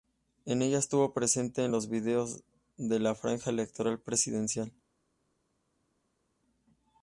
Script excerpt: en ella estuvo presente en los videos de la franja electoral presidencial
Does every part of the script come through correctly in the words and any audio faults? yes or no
yes